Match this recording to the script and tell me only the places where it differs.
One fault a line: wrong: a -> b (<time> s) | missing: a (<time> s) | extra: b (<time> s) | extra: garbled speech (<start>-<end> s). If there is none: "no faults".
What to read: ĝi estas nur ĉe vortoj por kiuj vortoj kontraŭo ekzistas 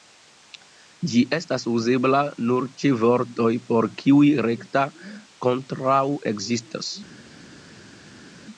extra: uzebla (1.7 s)
wrong: vortoj -> rekta (4.5 s)